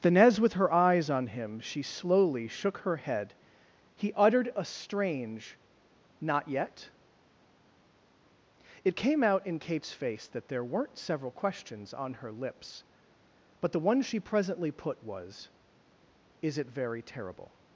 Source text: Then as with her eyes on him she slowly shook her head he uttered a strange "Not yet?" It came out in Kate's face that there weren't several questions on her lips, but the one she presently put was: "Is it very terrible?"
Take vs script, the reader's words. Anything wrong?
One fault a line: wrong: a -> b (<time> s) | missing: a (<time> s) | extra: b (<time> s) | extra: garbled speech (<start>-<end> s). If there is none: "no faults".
no faults